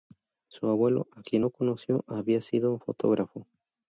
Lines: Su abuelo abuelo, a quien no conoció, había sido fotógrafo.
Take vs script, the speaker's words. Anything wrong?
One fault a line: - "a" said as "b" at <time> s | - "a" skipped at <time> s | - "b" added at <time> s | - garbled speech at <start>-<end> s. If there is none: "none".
- "abuelo" skipped at 1.1 s